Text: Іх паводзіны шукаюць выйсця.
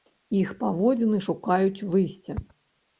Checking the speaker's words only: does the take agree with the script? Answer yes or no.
yes